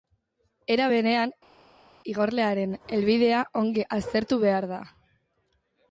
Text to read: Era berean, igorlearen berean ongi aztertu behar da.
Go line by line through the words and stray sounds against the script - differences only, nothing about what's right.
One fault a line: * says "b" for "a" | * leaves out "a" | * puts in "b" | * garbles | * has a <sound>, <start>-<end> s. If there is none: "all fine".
* says "helbidea" for "berean"